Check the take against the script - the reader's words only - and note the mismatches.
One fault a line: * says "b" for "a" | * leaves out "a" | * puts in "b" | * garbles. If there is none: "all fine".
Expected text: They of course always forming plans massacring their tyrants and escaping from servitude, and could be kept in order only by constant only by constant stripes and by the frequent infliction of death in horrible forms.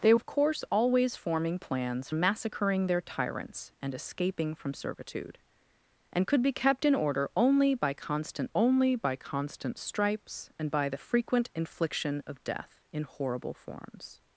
all fine